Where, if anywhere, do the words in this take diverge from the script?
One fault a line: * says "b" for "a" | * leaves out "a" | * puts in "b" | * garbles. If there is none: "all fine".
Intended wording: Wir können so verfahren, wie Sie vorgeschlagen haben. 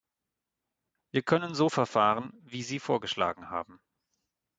all fine